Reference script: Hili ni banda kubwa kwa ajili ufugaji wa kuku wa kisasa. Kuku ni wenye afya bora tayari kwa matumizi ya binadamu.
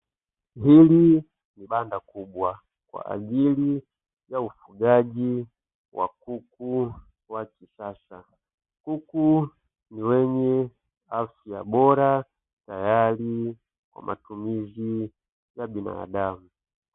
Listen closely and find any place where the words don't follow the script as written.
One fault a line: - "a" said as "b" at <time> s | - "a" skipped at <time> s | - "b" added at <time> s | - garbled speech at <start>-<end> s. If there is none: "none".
- "ya" added at 4.3 s